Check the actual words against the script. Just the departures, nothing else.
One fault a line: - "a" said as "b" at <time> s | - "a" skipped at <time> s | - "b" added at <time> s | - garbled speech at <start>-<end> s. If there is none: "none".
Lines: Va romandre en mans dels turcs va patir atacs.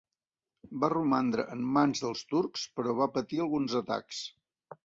- "però" added at 2.8 s
- "alguns" added at 3.5 s